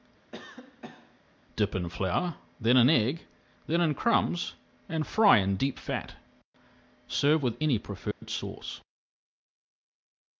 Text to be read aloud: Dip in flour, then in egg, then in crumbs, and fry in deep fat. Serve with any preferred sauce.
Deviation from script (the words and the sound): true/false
true